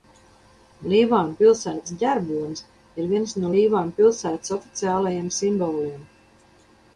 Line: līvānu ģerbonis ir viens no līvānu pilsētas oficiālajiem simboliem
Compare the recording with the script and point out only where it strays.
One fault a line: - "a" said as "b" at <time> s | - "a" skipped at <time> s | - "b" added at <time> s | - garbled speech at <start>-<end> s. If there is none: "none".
- "pilsētas" added at 1.4 s